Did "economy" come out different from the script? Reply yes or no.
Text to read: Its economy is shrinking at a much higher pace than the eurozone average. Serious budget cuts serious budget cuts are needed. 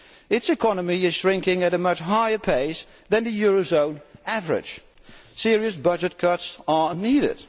no